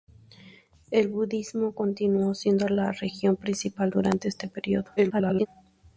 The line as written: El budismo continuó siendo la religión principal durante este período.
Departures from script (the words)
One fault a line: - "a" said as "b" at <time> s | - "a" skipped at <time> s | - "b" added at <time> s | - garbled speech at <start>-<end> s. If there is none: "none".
- garbled speech at 5.0-5.5 s